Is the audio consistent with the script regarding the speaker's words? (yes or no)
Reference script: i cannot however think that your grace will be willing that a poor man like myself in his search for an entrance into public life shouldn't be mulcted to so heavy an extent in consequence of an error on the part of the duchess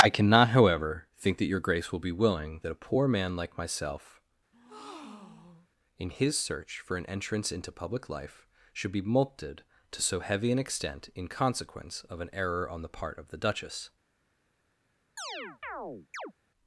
no